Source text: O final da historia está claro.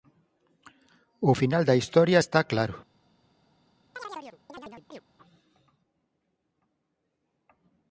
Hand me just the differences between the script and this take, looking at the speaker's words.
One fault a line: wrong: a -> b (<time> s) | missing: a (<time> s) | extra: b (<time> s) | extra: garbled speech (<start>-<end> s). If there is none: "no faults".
no faults